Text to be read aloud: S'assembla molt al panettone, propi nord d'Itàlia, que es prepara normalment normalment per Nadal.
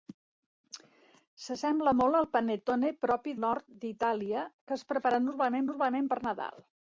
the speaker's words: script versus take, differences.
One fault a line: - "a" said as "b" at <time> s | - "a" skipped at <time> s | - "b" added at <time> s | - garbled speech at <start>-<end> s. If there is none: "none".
none